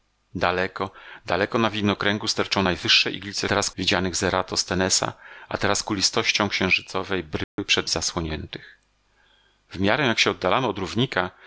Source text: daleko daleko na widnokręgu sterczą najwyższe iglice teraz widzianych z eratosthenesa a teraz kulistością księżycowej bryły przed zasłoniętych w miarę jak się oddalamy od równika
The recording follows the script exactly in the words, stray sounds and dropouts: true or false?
false